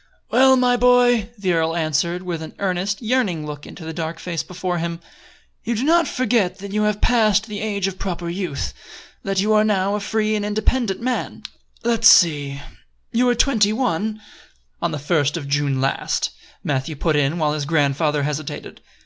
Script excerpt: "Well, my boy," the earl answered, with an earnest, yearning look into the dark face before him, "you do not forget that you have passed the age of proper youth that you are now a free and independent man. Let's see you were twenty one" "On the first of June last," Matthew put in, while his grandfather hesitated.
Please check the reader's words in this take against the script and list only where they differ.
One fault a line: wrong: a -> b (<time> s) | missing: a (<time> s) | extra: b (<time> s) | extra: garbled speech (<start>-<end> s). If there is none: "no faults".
no faults